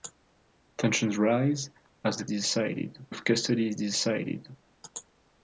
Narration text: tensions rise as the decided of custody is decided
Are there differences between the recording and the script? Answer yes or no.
no